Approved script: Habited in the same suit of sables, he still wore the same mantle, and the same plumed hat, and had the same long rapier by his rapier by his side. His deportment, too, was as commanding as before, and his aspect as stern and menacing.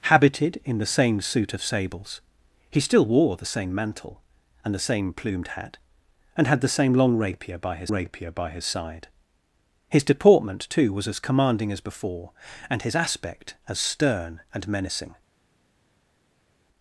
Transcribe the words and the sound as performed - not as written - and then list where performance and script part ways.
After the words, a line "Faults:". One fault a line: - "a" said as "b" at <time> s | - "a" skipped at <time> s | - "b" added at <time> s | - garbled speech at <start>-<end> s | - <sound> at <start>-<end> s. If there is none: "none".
Habited in the same suit of sables, he still wore the same mantle, and the same plumed hat, and had the same long rapier by his rapier by his side. His deportment, too, was as commanding as before, and his aspect as stern and menacing.
Faults:
none